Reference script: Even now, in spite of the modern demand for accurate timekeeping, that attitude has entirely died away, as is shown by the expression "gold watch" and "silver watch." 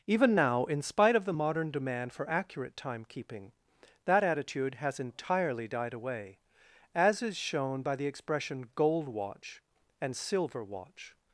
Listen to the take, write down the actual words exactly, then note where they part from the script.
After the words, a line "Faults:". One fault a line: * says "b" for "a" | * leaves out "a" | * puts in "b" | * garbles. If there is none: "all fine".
Even now, in spite of the modern demand for accurate timekeeping, that attitude has entirely died away, as is shown by the expression "gold watch" and "silver watch."
Faults:
all fine